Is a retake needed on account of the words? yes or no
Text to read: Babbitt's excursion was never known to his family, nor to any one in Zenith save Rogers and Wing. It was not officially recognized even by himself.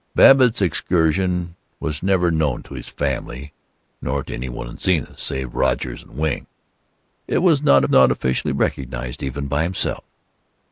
yes